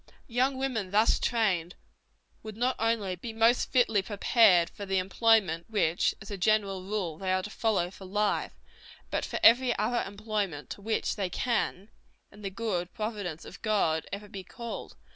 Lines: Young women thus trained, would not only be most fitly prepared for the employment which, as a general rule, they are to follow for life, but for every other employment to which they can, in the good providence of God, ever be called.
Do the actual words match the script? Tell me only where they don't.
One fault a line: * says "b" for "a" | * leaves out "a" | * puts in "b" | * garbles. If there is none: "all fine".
all fine